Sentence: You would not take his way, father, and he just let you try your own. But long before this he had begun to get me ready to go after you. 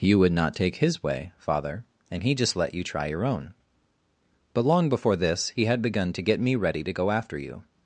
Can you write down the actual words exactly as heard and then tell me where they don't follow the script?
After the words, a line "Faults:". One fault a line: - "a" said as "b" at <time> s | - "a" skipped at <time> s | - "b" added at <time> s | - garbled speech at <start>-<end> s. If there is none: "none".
You would not take his way, father, and he just let you try your own. But long before this he had begun to get me ready to go after you.
Faults:
none